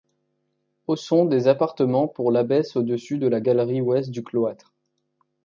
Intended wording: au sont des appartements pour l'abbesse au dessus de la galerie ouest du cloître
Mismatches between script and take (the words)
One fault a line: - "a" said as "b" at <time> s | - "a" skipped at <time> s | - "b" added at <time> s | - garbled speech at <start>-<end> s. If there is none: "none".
none